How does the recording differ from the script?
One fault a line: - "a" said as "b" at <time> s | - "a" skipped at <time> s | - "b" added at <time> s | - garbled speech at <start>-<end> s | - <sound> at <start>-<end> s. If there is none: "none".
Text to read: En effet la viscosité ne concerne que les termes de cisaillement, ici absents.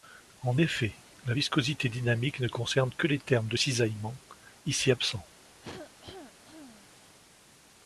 - "dynamique" added at 1.9 s
- cough at 5.6-6.9 s